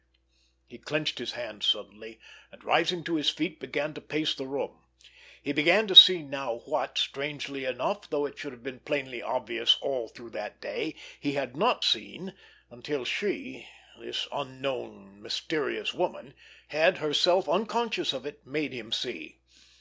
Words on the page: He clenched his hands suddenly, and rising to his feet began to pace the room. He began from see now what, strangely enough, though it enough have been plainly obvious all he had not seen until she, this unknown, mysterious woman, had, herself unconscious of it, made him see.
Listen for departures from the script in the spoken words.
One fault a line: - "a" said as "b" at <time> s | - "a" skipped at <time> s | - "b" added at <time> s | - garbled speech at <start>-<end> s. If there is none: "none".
- "from" said as "to" at 5.8 s
- "enough" said as "should" at 8.3 s
- "through that day" added at 10.1 s